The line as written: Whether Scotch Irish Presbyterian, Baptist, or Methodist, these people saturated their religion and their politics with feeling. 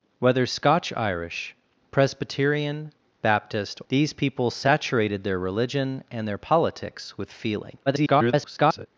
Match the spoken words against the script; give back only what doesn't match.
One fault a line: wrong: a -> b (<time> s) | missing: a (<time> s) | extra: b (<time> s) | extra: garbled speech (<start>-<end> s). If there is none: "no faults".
missing: or Methodist (3.8 s)
extra: garbled speech (7.9-8.9 s)